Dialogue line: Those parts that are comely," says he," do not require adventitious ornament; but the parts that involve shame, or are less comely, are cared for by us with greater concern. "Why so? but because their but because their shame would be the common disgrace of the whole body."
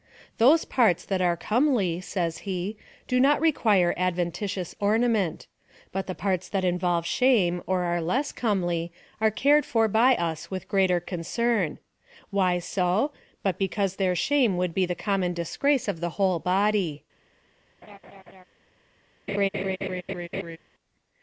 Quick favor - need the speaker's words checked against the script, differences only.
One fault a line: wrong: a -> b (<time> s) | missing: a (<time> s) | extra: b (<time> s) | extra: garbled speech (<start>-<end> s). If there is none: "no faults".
missing: but because their (14.1 s)